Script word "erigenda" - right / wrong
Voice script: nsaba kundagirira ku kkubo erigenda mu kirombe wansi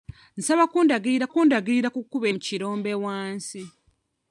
wrong